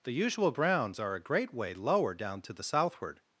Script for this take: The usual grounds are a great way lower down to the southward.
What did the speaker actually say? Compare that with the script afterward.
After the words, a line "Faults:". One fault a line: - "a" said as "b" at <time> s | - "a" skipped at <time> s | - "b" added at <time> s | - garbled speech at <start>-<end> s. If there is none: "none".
The usual browns are a great way lower down to the southward.
Faults:
- "grounds" said as "browns" at 0.5 s